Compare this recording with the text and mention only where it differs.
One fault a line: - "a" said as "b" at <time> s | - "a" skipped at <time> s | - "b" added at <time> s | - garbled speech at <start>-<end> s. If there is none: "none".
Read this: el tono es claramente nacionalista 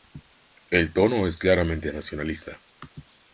none